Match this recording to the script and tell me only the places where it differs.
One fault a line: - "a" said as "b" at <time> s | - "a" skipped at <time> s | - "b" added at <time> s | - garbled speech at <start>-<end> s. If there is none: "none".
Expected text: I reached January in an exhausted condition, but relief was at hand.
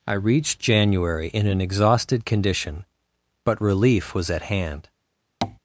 none